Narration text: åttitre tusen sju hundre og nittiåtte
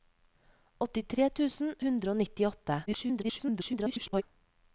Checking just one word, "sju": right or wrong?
wrong